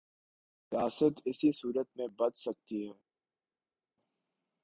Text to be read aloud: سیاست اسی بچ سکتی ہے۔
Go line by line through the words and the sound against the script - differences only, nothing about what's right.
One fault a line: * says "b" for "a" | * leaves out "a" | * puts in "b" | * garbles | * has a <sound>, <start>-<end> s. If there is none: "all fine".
* puts in "صورت میں"